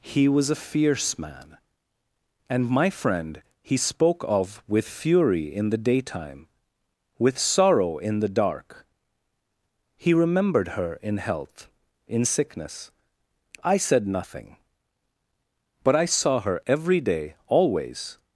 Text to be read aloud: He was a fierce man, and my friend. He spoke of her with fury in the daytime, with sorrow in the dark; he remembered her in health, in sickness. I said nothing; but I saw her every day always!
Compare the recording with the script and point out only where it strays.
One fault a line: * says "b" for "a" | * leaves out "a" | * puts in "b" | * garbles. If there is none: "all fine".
* leaves out "her"